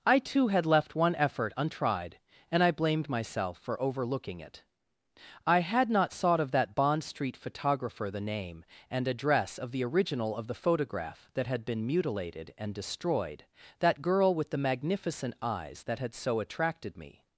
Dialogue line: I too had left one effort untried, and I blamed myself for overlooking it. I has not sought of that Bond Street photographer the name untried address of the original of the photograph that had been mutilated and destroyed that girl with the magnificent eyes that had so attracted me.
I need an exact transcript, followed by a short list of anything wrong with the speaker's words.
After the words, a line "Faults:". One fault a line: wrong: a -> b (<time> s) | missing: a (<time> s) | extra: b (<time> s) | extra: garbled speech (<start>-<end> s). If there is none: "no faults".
I too had left one effort untried, and I blamed myself for overlooking it. I had not sought of that Bond Street photographer the name and address of the original of the photograph that had been mutilated and destroyed that girl with the magnificent eyes that had so attracted me.
Faults:
wrong: has -> had (5.6 s)
wrong: untried -> and (8.9 s)